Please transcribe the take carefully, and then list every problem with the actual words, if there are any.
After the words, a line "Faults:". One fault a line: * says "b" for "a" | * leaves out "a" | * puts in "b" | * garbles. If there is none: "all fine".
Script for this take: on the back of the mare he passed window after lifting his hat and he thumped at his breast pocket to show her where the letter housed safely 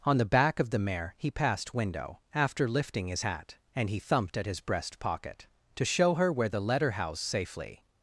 on the back of the mare he passed window after lifting his hat and he thumped at his breast pocket to show her where the letter housed safely
Faults:
all fine